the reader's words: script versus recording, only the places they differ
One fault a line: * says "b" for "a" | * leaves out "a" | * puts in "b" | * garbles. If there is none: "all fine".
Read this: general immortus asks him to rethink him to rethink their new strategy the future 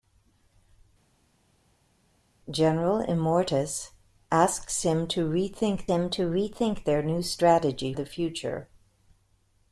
all fine